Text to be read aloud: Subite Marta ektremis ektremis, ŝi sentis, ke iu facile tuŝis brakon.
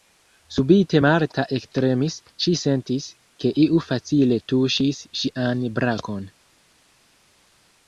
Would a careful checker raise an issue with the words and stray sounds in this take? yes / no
yes